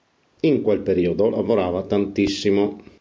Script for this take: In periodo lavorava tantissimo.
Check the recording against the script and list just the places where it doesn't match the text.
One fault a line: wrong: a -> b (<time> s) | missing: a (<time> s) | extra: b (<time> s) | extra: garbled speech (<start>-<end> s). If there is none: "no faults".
extra: quel (0.6 s)